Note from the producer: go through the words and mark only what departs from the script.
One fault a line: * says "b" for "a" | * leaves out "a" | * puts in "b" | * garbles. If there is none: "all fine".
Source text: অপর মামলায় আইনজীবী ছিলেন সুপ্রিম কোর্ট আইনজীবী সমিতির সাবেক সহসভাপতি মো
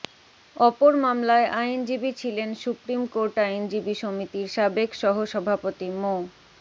all fine